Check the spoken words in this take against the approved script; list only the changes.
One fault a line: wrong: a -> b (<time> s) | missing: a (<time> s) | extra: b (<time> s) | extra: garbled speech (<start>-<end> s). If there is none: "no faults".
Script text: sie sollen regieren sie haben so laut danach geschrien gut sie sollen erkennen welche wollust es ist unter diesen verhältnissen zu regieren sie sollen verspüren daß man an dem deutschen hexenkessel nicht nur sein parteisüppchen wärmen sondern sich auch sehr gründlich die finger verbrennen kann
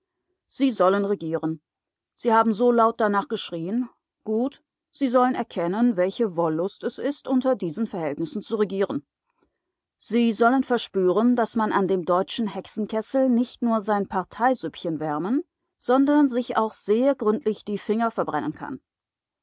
no faults